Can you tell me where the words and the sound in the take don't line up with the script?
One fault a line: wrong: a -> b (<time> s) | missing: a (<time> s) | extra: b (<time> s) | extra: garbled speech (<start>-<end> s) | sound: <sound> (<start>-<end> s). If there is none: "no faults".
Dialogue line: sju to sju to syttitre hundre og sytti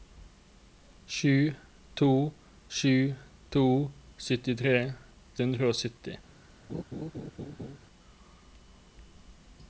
sound: laugh (6.7-7.8 s)